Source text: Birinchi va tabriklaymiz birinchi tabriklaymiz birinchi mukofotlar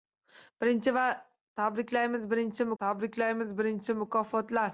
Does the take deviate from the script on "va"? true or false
false